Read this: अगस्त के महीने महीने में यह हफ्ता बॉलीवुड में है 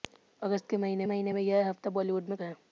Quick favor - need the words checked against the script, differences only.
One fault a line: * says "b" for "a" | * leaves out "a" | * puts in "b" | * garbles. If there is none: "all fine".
all fine